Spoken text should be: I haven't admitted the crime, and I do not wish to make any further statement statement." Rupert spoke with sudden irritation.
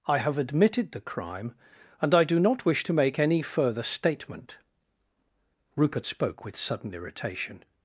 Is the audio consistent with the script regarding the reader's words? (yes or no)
no